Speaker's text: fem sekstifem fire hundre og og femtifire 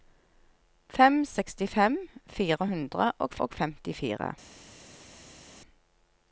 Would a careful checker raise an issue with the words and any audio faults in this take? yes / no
no